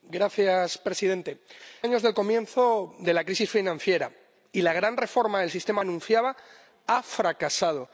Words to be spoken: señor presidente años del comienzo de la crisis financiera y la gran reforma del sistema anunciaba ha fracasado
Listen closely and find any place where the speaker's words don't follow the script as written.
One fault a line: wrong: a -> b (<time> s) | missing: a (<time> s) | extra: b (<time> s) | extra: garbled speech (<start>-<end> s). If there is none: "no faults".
no faults